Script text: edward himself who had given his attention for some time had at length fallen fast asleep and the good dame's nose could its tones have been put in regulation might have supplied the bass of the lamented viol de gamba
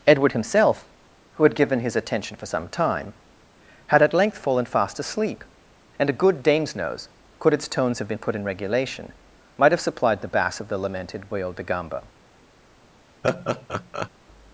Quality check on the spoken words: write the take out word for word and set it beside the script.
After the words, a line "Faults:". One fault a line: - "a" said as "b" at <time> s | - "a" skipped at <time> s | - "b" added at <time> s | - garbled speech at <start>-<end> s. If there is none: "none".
edward himself who had given his attention for some time had at length fallen fast asleep and a good dame's nose could its tones have been put in regulation might have supplied the bass of the lamented viol de gamba
Faults:
- "the" said as "a" at 6.1 s